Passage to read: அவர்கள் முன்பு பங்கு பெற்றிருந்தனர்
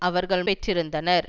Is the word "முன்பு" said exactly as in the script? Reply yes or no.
no